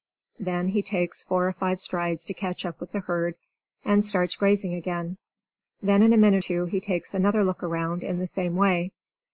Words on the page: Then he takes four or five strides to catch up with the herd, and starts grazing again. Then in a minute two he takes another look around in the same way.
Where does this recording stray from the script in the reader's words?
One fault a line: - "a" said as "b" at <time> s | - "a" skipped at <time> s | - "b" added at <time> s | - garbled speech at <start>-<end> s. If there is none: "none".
none